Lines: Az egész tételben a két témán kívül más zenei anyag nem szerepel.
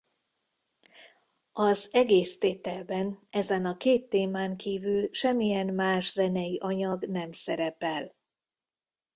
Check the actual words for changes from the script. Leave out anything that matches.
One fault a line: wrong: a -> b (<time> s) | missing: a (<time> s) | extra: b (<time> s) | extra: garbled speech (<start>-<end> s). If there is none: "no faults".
extra: ezen (3.3 s)
extra: semmilyen (5.1 s)